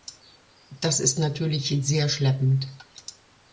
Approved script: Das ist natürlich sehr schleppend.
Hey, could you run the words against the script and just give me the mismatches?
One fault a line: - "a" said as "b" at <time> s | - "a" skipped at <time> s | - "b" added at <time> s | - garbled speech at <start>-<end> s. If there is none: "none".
none